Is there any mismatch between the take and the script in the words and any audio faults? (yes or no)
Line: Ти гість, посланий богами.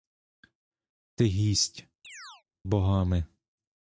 yes